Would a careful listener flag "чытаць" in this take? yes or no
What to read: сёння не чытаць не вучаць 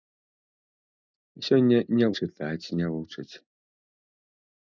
no